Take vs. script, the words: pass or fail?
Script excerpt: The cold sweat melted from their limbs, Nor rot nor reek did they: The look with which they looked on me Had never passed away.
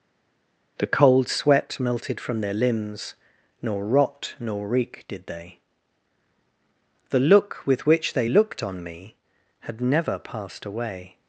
pass